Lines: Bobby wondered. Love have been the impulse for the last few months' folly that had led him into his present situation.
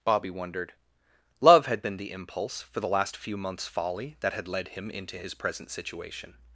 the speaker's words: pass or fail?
fail